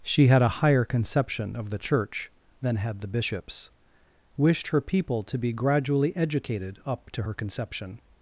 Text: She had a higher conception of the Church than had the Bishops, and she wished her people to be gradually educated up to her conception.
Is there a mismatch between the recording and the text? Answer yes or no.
yes